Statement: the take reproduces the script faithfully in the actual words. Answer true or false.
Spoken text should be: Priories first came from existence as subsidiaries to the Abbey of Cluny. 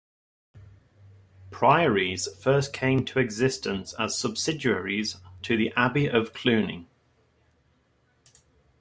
false